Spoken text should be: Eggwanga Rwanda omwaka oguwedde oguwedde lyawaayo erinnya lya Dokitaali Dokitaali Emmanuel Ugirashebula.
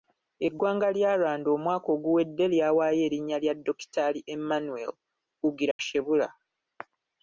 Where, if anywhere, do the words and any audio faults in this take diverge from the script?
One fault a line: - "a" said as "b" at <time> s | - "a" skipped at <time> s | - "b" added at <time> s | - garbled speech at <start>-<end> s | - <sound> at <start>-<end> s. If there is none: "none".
- "lya" added at 0.9 s
- "oguwedde" skipped at 2.5 s
- "Dokitaali" skipped at 4.2 s
- dropout at 5.7-5.8 s